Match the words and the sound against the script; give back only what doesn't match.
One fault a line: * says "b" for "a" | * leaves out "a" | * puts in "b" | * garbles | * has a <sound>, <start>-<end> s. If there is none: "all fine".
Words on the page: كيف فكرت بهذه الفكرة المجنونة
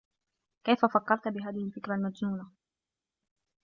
all fine